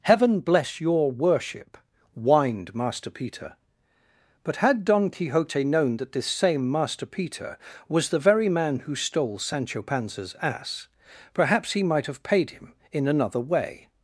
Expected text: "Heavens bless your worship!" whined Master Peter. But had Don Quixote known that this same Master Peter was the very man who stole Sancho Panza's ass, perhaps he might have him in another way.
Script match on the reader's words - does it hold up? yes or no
no